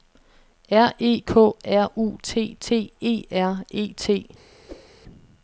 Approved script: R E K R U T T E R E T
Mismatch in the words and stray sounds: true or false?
true